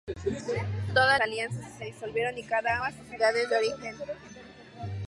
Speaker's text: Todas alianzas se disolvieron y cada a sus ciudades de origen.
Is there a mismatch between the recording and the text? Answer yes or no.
no